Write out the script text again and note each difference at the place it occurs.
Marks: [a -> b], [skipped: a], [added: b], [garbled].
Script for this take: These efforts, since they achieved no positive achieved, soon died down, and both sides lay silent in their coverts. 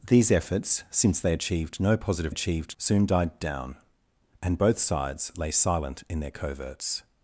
These efforts, since they achieved no positive achieved, soon died down, and both sides lay silent in their coverts.